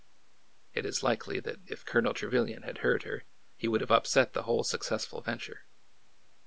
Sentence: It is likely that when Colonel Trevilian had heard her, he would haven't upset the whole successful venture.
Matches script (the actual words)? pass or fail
fail